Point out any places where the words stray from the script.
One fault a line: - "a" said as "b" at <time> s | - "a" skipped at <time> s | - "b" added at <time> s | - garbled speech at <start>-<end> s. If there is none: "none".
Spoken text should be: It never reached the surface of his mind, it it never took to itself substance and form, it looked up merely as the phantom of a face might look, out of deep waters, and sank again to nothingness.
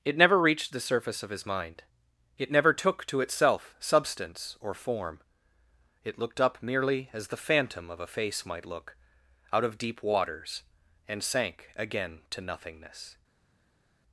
- "it" skipped at 2.5 s
- "and" said as "or" at 4.6 s